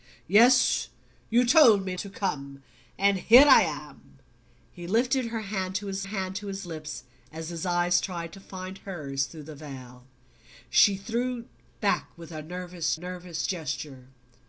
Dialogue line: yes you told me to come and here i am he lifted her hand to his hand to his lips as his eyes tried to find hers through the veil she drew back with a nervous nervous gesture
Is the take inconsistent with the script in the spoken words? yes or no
no